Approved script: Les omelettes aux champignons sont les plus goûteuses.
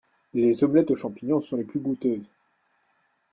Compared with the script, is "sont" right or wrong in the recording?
right